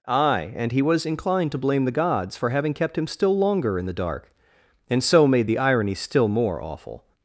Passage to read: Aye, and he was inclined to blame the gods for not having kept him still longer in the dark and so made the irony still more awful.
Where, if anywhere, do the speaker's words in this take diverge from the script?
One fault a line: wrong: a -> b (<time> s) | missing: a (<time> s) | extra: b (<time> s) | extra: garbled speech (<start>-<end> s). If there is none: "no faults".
missing: not (2.5 s)